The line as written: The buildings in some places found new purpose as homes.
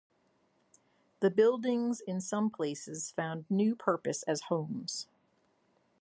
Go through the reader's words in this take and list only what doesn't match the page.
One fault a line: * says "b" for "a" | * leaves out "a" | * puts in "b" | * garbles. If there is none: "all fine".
all fine